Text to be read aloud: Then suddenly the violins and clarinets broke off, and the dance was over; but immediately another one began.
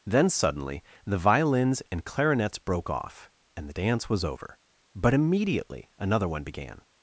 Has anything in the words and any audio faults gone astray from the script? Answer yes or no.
no